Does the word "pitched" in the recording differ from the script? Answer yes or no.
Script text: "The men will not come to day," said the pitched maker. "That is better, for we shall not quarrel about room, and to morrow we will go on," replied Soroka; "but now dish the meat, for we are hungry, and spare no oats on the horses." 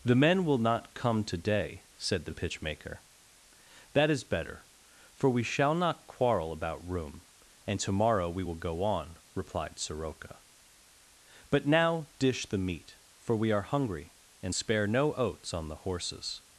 yes